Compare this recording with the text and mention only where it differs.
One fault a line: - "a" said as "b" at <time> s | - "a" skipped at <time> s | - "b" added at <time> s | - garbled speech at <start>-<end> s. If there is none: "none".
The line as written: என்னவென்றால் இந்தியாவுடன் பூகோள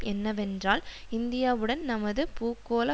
- "நமது" added at 1.8 s